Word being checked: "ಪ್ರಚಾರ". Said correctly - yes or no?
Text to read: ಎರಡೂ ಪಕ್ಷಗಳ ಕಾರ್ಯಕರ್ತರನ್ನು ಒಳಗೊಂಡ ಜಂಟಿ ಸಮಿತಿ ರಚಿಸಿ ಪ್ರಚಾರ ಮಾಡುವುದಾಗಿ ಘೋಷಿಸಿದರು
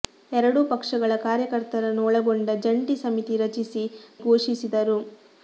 no